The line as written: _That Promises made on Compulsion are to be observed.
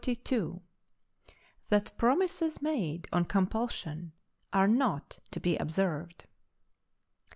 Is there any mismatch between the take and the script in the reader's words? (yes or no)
yes